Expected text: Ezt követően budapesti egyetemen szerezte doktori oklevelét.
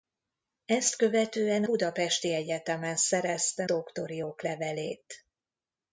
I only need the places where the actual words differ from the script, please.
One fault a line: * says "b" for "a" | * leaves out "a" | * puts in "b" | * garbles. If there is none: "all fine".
all fine